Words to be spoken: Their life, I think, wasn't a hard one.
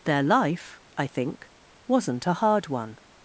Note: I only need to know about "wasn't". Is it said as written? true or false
true